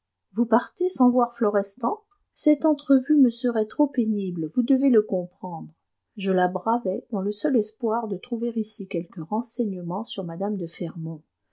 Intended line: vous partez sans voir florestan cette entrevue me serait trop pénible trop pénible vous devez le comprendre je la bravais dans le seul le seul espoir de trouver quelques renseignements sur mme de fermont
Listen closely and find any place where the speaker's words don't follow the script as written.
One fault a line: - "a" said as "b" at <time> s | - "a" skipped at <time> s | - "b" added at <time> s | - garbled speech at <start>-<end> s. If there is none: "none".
- "trop pénible" skipped at 4.5 s
- "le seul" skipped at 7.5 s
- "ici" added at 8.6 s